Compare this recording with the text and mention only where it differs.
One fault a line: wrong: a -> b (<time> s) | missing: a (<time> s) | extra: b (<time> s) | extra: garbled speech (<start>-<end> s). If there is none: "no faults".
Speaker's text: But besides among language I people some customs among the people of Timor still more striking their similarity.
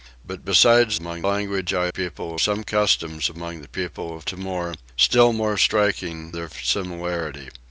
no faults